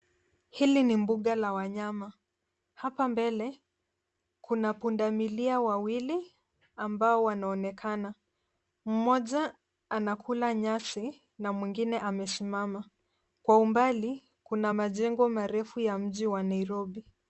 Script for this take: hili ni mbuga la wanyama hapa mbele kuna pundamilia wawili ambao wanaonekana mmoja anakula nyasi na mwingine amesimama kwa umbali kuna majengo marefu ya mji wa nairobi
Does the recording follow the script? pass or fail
pass